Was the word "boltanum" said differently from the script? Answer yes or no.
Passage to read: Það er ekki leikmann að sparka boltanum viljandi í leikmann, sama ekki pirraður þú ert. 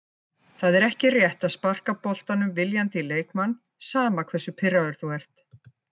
no